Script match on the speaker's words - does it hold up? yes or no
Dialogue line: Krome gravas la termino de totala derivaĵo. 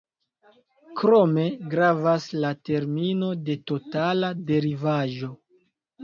yes